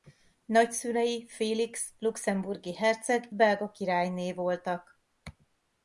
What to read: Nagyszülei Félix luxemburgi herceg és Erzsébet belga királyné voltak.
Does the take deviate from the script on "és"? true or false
true